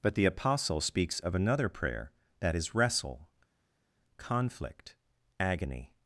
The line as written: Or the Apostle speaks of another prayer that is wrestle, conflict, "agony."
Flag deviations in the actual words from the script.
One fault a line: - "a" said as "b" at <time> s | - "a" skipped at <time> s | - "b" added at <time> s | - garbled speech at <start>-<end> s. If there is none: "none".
- "Or" said as "But" at 0.0 s